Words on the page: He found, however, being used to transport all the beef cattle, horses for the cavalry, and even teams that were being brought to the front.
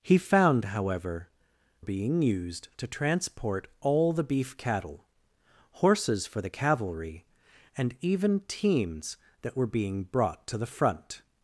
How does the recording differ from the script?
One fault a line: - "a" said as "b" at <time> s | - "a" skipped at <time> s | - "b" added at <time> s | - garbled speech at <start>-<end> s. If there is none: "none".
none